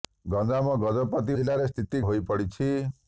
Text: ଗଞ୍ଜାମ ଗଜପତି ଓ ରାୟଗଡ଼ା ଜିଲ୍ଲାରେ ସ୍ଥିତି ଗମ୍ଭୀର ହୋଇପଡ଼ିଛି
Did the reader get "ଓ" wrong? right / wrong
wrong